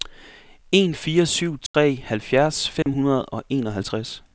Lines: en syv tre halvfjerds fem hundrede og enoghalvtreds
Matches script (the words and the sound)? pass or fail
fail